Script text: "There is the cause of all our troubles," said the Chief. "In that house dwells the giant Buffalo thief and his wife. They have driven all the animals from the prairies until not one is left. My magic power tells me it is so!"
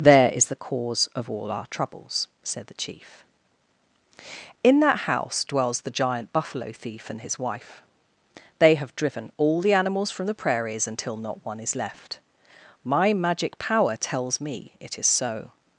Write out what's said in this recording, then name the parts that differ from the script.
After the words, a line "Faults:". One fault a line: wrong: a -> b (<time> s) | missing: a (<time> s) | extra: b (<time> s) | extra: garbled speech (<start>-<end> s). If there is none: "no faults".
"There is the cause of all our troubles," said the Chief. "In that house dwells the giant Buffalo thief and his wife. They have driven all the animals from the prairies until not one is left. My magic power tells me it is so!"
Faults:
no faults